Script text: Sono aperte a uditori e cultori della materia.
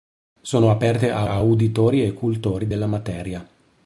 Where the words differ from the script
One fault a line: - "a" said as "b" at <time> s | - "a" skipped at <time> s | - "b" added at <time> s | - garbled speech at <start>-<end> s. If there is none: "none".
- "a" added at 1.2 s